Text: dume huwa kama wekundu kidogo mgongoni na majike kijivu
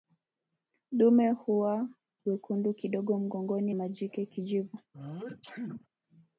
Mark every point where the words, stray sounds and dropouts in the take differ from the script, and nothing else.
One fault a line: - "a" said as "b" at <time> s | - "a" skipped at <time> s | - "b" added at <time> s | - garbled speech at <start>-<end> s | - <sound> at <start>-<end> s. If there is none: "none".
- "kama" skipped at 1.9 s
- "na" skipped at 3.7 s
- sneeze at 4.9-5.9 s